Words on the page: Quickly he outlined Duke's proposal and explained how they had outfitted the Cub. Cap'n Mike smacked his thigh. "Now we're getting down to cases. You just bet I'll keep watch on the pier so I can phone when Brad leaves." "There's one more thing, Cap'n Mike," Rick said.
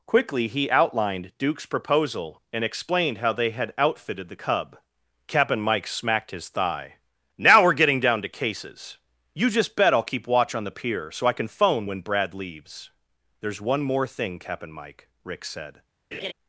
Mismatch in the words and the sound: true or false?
true